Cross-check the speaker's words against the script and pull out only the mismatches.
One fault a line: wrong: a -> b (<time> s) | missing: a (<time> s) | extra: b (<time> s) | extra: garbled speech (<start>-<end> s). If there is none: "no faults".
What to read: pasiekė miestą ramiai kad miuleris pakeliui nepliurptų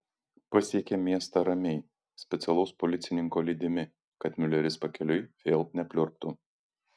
extra: specialaus policininko lydimi (2.2 s)
extra: vėl (5.5 s)